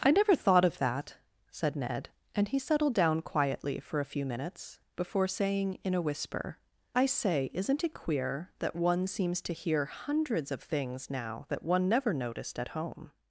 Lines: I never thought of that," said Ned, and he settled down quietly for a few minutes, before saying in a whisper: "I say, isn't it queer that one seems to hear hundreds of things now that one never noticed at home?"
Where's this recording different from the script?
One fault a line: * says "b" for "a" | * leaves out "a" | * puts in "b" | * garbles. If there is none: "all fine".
all fine